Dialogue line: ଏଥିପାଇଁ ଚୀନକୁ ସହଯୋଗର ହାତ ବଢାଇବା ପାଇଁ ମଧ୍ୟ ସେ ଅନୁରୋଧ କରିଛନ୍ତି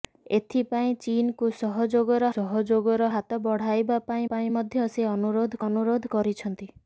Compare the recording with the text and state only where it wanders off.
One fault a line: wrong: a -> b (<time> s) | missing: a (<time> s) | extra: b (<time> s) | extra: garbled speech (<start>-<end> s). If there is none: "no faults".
extra: ସହଯୋଗର (2.3 s)
extra: ପାଇଁ (4.3 s)
extra: ଅନୁରୋଧ (5.7 s)